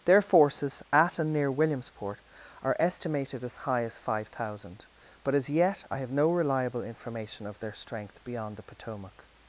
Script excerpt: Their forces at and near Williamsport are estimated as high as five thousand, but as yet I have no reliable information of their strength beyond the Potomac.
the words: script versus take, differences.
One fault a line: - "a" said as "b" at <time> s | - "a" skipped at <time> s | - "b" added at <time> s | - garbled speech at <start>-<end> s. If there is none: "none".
none